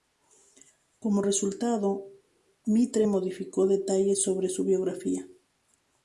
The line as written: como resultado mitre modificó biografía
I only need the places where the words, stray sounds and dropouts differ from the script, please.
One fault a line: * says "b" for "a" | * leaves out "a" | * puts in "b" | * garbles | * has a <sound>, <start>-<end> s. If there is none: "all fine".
* puts in "detalles sobre su"